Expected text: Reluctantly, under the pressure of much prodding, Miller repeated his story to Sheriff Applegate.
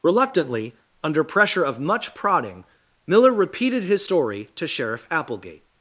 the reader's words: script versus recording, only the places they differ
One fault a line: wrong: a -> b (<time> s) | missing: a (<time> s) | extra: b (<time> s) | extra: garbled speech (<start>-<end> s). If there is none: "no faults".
missing: the (1.2 s)